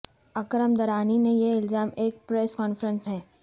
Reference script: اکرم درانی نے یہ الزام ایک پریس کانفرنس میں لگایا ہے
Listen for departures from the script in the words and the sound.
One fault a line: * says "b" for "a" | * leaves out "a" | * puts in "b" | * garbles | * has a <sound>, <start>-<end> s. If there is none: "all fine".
* leaves out "میں لگایا"